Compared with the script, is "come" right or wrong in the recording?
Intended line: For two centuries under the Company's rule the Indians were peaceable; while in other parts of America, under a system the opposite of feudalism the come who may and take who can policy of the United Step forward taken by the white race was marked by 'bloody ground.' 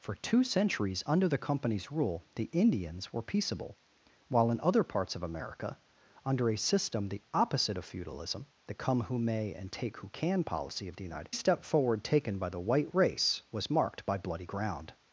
right